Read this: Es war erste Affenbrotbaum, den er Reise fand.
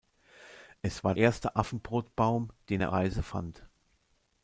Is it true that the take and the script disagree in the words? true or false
false